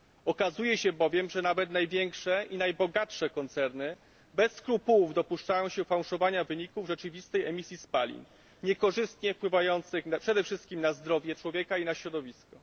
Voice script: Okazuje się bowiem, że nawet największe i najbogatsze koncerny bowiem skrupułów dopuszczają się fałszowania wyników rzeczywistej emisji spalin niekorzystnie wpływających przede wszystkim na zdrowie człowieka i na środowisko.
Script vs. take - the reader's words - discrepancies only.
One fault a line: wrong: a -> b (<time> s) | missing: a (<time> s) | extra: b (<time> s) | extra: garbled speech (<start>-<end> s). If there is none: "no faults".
wrong: bowiem -> bez (4.3 s)